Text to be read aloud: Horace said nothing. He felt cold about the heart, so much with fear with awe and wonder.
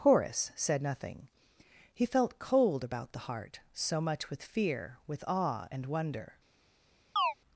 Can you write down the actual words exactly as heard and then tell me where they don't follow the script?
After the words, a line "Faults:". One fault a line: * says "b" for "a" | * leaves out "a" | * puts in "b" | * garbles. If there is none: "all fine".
Horace said nothing. He felt cold about the heart, so much with fear with awe and wonder.
Faults:
all fine